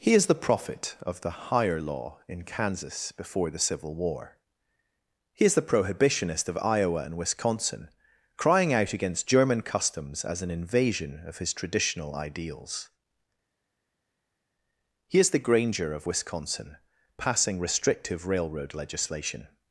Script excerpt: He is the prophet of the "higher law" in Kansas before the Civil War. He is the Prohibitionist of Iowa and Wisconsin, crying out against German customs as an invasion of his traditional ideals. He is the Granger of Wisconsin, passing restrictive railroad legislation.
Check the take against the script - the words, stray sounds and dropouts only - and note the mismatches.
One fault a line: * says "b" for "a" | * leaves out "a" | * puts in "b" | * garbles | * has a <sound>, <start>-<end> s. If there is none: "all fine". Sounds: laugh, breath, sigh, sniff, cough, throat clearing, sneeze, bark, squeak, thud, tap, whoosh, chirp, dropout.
all fine